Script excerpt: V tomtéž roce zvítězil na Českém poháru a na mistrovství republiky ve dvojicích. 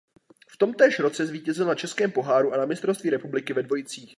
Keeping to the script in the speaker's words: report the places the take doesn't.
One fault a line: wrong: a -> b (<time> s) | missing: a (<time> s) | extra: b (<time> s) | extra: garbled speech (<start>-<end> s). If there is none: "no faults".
no faults